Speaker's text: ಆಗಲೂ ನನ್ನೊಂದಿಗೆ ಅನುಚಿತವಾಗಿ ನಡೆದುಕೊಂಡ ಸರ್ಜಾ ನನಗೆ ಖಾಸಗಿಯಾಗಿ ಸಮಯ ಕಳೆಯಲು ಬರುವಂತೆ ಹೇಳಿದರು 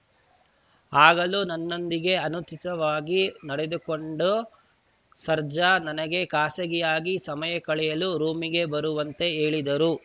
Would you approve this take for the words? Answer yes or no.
no